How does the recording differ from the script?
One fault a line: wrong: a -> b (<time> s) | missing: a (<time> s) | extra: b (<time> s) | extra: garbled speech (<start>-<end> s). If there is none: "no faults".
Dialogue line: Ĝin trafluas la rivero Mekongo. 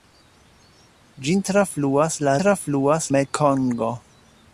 wrong: rivero -> trafluas (2.4 s)